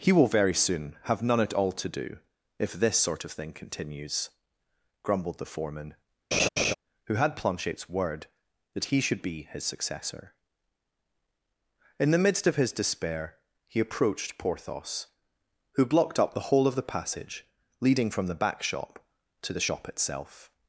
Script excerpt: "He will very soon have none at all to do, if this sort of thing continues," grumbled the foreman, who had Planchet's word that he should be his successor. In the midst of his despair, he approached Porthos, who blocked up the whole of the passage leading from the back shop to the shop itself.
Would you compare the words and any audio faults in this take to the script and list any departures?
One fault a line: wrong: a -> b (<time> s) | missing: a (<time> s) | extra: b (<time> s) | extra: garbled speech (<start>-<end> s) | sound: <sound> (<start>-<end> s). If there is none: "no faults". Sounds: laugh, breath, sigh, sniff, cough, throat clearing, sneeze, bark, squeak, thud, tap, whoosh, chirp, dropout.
sound: laugh (6.3-6.7 s)